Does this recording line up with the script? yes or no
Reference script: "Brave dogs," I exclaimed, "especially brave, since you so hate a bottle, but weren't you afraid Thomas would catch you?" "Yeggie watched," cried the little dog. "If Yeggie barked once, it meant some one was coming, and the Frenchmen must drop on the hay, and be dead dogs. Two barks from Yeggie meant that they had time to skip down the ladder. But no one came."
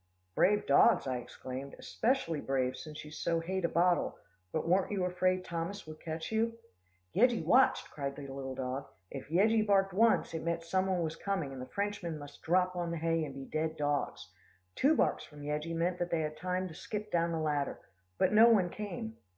yes